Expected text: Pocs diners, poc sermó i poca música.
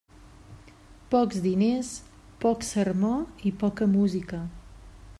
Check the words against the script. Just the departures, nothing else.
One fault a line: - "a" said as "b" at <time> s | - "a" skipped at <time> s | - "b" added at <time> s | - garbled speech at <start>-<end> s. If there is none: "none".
none